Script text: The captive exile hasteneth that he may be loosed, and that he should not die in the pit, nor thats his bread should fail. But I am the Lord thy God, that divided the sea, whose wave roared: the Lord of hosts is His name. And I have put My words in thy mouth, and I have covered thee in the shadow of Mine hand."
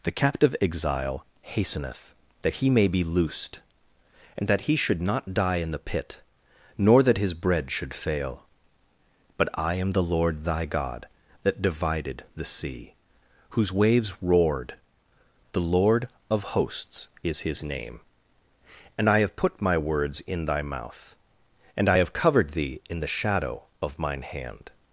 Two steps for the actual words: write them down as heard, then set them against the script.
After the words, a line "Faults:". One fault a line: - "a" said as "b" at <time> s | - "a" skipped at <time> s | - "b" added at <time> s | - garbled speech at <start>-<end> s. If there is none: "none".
The captive exile hasteneth that he may be loosed, and that he should not die in the pit, nor that his bread should fail. But I am the Lord thy God, that divided the sea, whose waves roared: the Lord of hosts is His name. And I have put My words in thy mouth, and I have covered thee in the shadow of Mine hand."
Faults:
- "thats" said as "that" at 7.0 s
- "wave" said as "waves" at 13.7 s